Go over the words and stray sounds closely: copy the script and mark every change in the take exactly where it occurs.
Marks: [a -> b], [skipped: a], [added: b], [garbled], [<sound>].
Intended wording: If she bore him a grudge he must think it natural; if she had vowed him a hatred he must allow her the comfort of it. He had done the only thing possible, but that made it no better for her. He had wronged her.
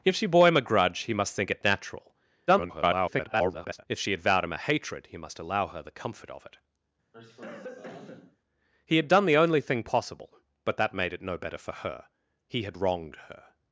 If she bore him a grudge he must think it natural; [garbled] if she had vowed him a hatred he must allow her the comfort of it. [cough] He had done the only thing possible, but that made it no better for her. He had wronged her.